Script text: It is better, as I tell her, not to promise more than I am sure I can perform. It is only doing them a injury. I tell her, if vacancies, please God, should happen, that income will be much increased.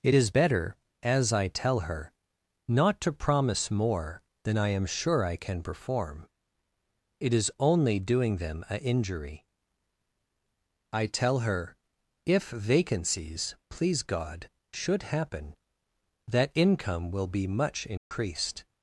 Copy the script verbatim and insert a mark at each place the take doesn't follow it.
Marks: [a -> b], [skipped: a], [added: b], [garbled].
It is better, as I tell her, not to promise more than I am sure I can perform. It is only doing them a injury. I tell her, if vacancies, please God, should happen, that income will be much increased.